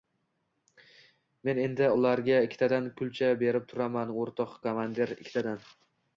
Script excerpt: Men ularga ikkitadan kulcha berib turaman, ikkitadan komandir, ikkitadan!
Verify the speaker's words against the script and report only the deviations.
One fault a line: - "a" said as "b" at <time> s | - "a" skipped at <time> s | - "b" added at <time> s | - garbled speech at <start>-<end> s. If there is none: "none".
- "endi" added at 1.6 s
- "ikkitadan" said as "o‘rtoq" at 4.2 s